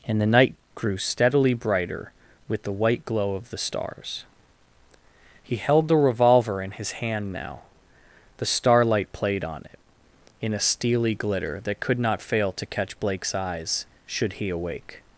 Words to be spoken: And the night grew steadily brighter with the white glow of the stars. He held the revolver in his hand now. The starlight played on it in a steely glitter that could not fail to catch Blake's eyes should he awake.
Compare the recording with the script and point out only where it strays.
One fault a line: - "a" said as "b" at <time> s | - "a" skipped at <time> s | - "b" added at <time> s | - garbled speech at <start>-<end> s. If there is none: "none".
none